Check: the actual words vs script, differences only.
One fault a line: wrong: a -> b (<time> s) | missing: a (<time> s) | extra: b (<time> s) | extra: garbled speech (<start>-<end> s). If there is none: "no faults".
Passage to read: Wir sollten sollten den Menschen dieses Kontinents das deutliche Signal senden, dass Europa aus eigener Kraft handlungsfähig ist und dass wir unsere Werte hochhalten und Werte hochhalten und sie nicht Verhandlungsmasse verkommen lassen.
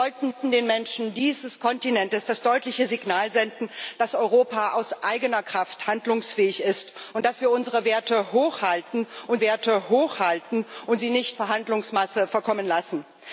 no faults